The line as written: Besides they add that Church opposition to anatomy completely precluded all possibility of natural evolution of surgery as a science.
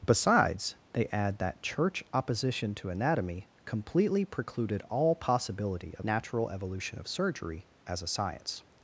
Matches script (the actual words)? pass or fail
pass